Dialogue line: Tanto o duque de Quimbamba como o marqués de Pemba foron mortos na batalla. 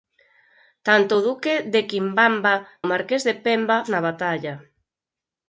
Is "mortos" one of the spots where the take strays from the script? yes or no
yes